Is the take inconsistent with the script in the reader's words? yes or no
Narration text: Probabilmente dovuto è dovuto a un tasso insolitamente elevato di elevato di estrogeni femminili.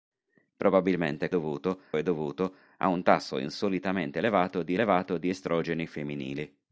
no